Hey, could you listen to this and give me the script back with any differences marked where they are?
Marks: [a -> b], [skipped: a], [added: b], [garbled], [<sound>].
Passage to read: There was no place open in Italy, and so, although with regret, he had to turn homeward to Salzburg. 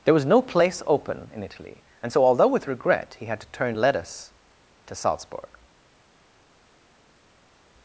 There was no place open in Italy, and so, although with regret, he had to turn [homeward -> lettuce] to Salzburg.